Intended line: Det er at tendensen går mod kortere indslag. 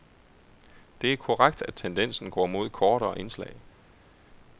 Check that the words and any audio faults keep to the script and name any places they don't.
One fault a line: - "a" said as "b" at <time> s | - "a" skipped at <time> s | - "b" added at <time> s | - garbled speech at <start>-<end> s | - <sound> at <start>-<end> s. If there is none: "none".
- "korrekt" added at 1.2 s